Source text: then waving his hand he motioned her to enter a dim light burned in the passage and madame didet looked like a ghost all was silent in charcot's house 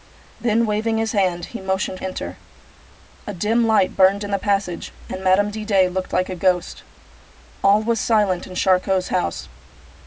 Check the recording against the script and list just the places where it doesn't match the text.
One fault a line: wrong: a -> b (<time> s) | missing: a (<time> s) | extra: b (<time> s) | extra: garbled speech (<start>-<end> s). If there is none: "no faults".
missing: her to (2.0 s)